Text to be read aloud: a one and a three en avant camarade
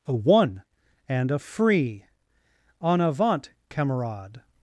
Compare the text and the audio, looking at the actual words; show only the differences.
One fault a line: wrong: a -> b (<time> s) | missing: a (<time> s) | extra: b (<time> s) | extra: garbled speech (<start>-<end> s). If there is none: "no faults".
wrong: three -> free (1.4 s)